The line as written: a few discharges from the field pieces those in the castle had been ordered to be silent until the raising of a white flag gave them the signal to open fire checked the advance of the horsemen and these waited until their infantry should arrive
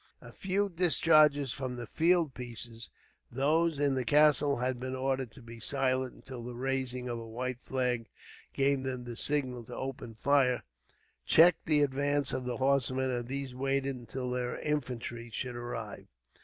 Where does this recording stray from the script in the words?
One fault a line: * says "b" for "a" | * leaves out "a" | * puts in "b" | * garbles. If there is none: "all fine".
all fine